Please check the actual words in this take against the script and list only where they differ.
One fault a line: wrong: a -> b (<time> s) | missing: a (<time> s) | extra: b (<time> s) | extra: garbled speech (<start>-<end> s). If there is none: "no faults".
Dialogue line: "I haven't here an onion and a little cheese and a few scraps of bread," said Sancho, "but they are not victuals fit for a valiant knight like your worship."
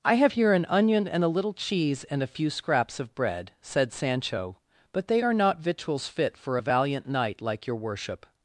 wrong: haven't -> have (0.1 s)